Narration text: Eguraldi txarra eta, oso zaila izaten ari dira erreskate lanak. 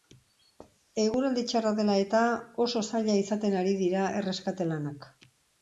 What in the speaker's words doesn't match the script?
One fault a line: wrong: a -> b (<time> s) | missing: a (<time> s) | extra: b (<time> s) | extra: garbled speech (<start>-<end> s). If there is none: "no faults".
extra: dela (1.8 s)